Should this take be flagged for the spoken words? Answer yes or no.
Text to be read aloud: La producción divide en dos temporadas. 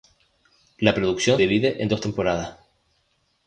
no